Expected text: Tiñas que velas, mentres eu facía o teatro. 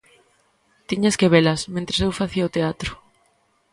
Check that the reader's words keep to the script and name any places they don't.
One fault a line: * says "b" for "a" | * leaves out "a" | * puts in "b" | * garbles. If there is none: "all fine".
all fine